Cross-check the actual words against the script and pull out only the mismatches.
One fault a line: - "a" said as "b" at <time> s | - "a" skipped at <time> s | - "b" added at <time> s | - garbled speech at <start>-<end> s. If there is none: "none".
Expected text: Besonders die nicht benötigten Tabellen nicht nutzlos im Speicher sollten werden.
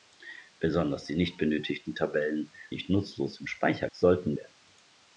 none